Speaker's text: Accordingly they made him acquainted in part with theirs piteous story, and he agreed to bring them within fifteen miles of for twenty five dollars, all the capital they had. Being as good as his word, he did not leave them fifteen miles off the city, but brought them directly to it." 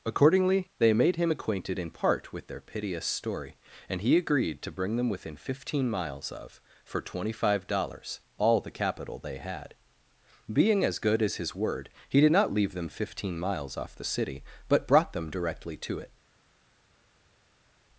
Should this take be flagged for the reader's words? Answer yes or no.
yes